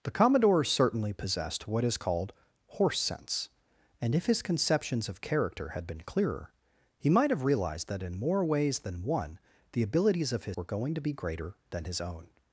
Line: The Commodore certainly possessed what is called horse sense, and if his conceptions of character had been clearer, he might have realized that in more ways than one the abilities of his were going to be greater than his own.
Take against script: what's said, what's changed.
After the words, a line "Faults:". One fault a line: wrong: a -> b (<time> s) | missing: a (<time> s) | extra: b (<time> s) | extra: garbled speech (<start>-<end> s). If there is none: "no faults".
The Commodore certainly possessed what is called horse sense, and if his conceptions of character had been clearer, he might have realized that in more ways than one the abilities of his were going to be greater than his own.
Faults:
no faults